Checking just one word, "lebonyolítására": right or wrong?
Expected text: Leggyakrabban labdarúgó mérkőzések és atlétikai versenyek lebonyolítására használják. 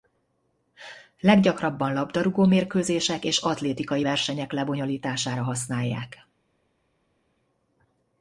right